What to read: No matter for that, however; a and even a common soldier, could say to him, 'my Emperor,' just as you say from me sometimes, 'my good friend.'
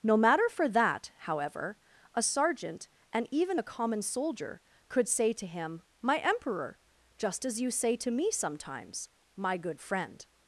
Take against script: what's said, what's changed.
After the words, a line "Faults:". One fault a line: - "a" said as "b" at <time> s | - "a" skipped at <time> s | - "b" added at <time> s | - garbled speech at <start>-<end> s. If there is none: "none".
No matter for that, however; a sergeant, and even a common soldier, could say to him, 'my Emperor,' just as you say to me sometimes, 'my good friend.'
Faults:
- "sergeant" added at 2.2 s
- "from" said as "to" at 8.0 s